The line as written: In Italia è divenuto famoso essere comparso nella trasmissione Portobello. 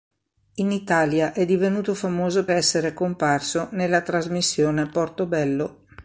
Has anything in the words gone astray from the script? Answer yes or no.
no